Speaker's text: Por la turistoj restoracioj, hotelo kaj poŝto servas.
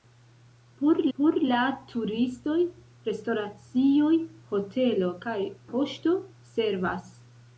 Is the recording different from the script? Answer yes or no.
yes